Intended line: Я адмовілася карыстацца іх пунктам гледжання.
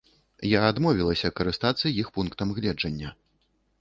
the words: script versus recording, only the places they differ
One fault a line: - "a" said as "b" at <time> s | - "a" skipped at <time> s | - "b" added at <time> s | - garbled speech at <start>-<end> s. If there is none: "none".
none